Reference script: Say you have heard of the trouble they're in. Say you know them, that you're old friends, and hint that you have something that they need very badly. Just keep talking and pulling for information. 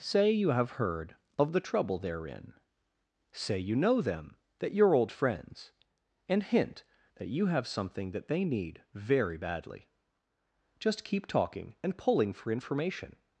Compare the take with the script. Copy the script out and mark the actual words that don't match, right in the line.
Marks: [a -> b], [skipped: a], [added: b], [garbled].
Say you have heard of the trouble they're in. Say you know them, that you're old friends, and hint that you have something that they need very badly. Just keep talking and pulling for information.